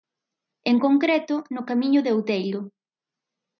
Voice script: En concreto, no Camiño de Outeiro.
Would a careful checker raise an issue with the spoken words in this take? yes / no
no